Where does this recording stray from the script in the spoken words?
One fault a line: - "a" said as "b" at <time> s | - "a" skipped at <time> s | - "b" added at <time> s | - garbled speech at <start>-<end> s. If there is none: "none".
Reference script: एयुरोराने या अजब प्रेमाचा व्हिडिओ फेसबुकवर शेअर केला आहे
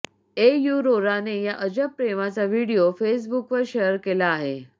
none